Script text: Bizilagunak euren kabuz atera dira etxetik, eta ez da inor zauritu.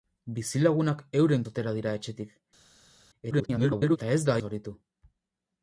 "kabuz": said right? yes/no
no